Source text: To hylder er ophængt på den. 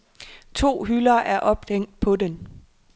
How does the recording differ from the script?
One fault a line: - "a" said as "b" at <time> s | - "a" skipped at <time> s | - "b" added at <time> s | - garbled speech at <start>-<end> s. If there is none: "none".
none